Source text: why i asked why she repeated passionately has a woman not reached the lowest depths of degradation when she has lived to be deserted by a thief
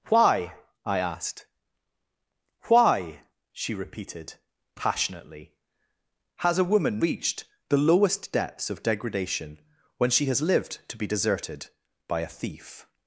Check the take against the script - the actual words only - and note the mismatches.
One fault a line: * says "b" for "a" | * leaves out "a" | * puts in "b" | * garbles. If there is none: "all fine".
* leaves out "not"